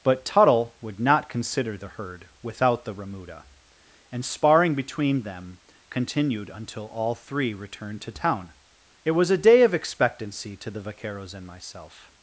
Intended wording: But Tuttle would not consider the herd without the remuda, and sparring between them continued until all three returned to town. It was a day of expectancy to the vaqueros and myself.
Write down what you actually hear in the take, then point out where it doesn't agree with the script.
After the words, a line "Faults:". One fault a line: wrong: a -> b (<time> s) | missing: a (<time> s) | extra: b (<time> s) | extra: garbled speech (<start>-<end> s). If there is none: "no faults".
But Tuttle would not consider the herd without the remuda, and sparring between them continued until all three returned to town. It was a day of expectancy to the vaqueros and myself.
Faults:
no faults